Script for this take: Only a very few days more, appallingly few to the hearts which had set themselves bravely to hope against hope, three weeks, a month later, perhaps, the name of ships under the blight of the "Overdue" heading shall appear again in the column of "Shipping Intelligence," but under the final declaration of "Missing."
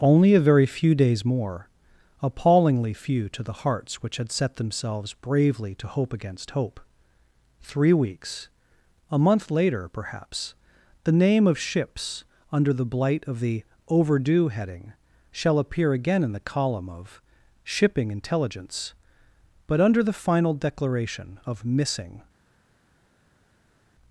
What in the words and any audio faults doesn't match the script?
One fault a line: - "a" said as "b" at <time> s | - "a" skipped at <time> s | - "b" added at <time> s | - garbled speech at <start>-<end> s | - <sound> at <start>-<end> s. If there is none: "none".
none